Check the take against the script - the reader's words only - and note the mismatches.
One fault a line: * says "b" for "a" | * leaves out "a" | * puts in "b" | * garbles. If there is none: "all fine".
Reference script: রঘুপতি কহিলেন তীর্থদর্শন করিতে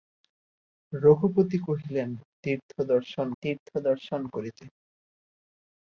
* puts in "তীর্থদর্শন"